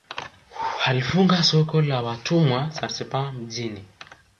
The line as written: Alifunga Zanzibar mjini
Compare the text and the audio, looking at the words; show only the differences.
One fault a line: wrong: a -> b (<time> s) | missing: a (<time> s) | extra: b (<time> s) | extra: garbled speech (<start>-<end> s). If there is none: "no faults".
extra: soko la watumwa (1.4 s)